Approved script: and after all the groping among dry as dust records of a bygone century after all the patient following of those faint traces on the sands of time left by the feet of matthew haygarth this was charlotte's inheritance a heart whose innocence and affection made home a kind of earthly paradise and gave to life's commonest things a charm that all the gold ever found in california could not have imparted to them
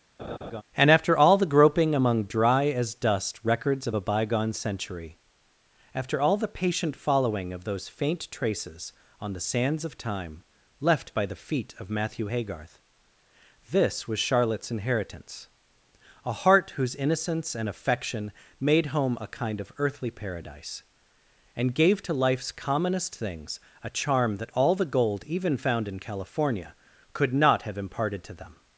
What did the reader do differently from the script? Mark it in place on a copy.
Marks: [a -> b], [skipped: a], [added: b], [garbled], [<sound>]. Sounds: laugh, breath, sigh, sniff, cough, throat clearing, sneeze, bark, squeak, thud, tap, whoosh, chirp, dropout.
[laugh] and after all the groping among dry as dust records of a bygone century after all the patient following of those faint traces on the sands of time left by the feet of matthew haygarth this was charlotte's inheritance a heart whose innocence and affection made home a kind of earthly paradise and gave to life's commonest things a charm that all the gold [ever -> even] found in california could not have imparted to them